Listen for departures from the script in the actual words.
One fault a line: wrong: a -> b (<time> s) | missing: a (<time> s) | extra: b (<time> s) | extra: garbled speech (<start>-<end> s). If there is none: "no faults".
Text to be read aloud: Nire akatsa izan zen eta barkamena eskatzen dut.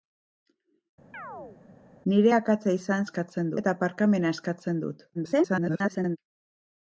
wrong: zen -> eskatzen (3.1 s)
extra: garbled speech (5.1-6.2 s)